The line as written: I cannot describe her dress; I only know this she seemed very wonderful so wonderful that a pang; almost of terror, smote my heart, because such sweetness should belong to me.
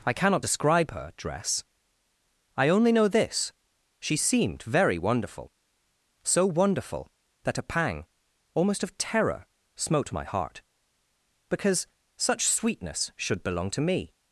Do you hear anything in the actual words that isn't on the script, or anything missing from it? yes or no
no